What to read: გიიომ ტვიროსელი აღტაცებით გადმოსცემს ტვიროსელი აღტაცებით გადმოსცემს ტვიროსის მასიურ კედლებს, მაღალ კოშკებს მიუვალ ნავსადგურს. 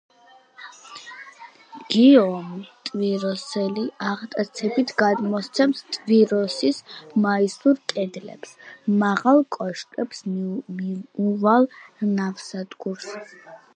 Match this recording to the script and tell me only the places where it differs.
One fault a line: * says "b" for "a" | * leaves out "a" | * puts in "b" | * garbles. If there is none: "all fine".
* leaves out "ტვიროსელი აღტაცებით გადმოსცემს"